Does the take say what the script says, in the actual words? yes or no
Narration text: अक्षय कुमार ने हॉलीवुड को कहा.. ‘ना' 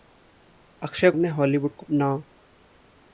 no